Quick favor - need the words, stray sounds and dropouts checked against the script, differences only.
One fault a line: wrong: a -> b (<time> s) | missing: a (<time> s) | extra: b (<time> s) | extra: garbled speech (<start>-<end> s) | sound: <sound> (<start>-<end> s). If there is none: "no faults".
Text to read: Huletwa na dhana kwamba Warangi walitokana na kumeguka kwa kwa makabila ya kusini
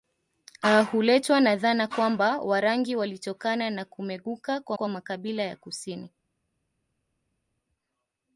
no faults